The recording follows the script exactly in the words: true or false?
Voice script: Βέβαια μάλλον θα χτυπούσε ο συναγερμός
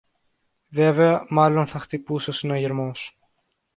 true